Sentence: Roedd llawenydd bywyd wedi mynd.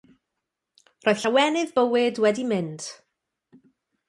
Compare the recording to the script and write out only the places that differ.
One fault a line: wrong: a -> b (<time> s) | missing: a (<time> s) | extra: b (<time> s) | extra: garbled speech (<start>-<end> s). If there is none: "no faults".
no faults